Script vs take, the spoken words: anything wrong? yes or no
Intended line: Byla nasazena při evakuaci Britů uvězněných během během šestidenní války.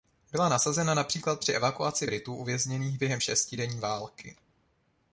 yes